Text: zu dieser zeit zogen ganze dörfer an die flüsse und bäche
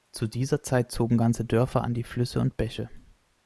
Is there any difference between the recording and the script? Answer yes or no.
no